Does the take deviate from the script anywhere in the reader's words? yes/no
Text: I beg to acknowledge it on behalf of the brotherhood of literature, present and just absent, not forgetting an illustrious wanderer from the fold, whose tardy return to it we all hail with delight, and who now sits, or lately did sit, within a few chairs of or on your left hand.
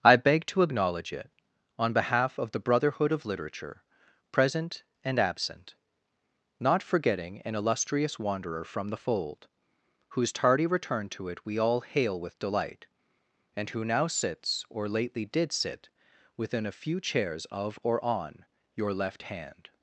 yes